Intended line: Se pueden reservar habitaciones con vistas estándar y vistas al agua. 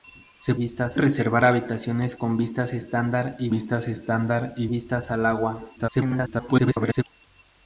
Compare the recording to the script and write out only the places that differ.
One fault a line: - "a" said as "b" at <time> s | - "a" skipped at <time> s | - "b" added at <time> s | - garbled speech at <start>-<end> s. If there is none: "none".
- "pueden" said as "vistas" at 0.6 s
- "estándar y vistas" added at 3.9 s
- garbled speech at 5.8-7.0 s